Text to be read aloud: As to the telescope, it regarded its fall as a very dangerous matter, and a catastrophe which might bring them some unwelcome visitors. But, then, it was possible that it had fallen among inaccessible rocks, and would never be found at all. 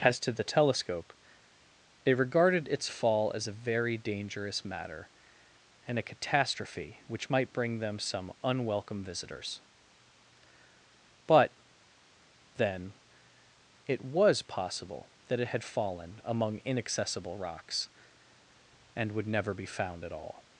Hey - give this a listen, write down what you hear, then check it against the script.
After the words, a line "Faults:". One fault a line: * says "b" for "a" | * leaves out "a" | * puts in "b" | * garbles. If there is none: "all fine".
As to the telescope, it regarded its fall as a very dangerous matter, and a catastrophe which might bring them some unwelcome visitors. But, then, it was possible that it had fallen among inaccessible rocks, and would never be found at all.
Faults:
all fine